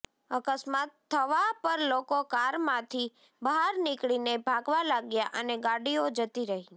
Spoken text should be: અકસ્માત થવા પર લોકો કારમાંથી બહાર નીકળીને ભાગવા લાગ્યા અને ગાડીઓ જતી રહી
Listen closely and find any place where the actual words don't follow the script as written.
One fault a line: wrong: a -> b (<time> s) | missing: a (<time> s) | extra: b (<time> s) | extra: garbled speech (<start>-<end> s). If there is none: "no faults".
no faults